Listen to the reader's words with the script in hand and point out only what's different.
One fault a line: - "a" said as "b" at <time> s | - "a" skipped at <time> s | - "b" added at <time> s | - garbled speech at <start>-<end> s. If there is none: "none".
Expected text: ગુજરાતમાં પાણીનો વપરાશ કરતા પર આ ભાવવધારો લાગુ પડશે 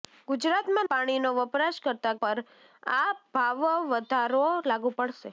none